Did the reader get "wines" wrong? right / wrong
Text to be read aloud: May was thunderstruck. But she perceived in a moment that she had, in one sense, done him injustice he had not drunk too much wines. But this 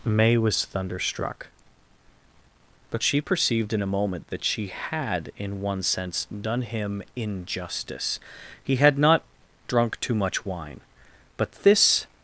wrong